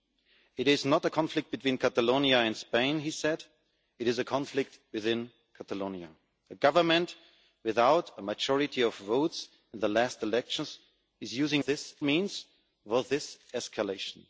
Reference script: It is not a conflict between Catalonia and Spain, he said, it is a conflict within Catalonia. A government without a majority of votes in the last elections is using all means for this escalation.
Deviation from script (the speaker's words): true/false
true